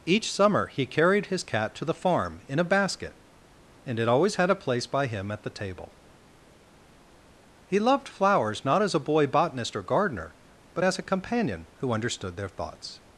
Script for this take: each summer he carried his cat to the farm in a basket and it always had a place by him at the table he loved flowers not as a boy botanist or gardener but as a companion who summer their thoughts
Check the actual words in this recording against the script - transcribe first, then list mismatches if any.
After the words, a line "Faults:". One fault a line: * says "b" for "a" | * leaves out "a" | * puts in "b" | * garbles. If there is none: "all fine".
each summer he carried his cat to the farm in a basket and it always had a place by him at the table he loved flowers not as a boy botanist or gardener but as a companion who understood their thoughts
Faults:
* says "understood" for "summer"